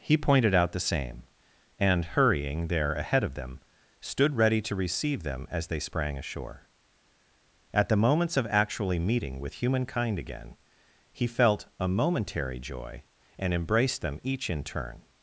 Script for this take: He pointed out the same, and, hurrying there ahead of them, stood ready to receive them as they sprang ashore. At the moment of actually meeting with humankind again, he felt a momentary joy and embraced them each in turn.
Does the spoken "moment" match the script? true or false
false